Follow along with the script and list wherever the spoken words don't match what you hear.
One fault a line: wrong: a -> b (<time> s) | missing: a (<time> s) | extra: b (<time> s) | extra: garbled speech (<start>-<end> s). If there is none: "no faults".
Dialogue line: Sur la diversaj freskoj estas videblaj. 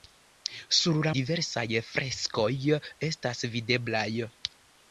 no faults